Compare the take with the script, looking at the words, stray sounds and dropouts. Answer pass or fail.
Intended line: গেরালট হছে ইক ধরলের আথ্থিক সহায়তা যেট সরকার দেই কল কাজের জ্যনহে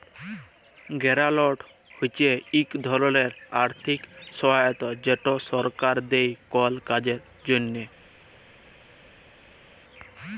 pass